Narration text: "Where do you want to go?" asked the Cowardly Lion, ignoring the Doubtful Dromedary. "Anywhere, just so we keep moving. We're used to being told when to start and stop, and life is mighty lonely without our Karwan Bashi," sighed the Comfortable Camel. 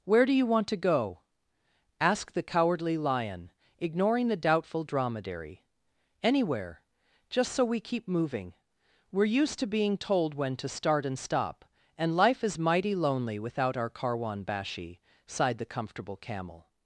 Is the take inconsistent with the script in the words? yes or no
no